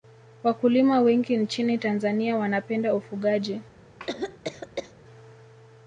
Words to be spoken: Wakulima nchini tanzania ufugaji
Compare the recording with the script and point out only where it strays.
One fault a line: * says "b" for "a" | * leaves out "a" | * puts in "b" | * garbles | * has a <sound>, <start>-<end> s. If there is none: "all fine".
* puts in "wengi"
* puts in "wanapenda"
* has a cough, 4.0-4.9 s